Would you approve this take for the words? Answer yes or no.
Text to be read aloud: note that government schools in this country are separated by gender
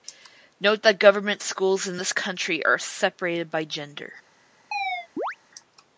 yes